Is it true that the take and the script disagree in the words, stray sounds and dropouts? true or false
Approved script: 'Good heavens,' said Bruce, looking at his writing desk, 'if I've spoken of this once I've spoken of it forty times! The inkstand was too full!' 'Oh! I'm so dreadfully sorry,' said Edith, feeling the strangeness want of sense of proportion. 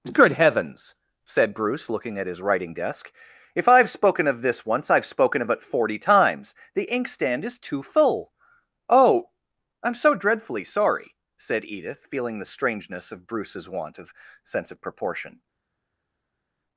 true